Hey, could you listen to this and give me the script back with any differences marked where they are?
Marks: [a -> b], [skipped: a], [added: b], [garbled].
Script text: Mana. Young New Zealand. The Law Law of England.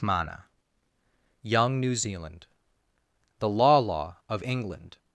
Mana. Young New Zealand. The Law Law of England.